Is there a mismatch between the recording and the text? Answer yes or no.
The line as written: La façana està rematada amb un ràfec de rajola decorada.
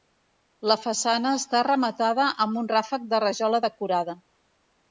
no